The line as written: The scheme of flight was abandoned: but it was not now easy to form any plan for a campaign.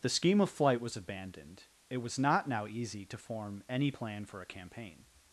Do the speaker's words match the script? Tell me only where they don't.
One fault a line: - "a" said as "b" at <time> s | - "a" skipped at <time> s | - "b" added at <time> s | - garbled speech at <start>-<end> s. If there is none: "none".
- "but" skipped at 1.6 s